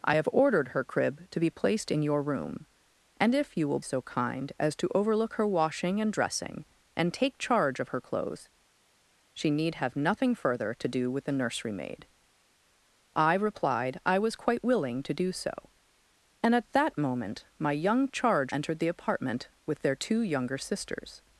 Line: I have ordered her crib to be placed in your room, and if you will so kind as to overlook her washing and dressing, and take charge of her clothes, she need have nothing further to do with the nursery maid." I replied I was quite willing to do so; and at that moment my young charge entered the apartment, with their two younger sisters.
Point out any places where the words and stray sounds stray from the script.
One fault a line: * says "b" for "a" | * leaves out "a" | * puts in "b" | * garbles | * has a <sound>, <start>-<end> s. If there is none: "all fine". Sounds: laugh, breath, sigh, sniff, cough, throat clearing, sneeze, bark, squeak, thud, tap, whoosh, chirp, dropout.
all fine